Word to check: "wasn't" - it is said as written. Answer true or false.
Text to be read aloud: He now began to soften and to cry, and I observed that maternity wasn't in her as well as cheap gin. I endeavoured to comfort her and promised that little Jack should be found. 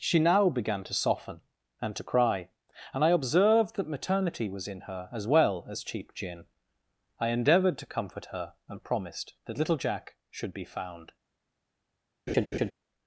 false